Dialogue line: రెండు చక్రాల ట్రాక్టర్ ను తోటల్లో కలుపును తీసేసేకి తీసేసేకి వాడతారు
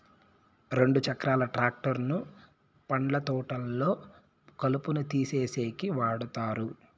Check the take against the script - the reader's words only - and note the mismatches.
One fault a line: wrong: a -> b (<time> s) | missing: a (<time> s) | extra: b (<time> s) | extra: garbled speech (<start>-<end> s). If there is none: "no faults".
extra: పండ్ల (2.9 s)
missing: తీసేసేకి (5.9 s)